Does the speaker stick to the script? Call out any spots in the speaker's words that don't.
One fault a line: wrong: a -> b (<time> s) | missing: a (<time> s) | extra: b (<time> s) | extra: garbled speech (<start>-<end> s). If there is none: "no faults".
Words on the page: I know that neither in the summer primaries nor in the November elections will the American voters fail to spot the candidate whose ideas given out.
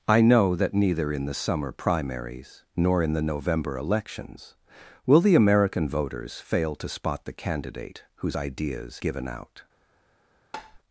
no faults